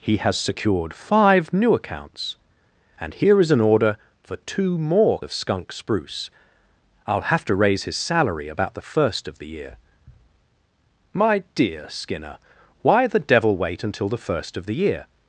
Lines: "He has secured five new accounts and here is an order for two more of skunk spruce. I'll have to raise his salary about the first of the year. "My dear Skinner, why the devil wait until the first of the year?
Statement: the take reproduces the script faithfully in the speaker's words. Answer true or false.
true